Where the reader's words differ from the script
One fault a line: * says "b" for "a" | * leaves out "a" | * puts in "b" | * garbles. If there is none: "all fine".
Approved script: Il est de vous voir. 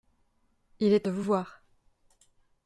all fine